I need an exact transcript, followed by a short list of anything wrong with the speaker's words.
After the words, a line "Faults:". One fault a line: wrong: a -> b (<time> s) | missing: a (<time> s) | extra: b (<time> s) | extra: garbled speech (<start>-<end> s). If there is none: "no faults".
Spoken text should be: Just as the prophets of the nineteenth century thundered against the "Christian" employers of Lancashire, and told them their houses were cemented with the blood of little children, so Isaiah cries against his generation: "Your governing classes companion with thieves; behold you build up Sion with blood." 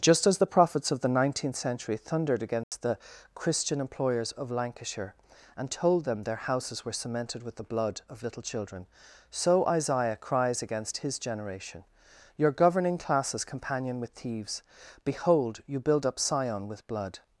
Just as the prophets of the nineteenth century thundered against the "Christian" employers of Lancashire, and told them their houses were cemented with the blood of little children, so Isaiah cries against his generation: "Your governing classes companion with thieves; behold you build up Sion with blood."
Faults:
no faults